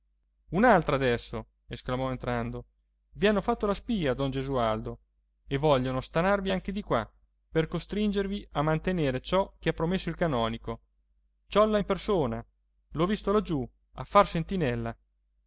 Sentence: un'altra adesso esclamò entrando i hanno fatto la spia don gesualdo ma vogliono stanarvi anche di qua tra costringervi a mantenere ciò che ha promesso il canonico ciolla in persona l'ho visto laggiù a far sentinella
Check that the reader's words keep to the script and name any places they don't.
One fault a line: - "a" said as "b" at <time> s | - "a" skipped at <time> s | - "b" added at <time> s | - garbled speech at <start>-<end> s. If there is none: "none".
- "ma" said as "e" at 5.5 s
- "tra" said as "per" at 7.5 s